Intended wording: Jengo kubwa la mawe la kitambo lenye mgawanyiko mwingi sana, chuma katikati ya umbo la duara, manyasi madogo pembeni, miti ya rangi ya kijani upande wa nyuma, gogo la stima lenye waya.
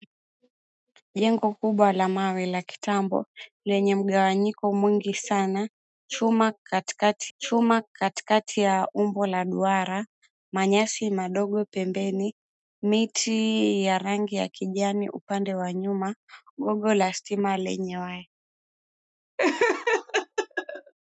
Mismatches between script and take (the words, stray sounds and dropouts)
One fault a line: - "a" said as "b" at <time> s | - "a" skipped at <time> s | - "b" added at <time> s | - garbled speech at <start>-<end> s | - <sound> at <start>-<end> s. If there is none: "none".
- "chuma katikati" added at 7.4 s
- laugh at 19.4-20.9 s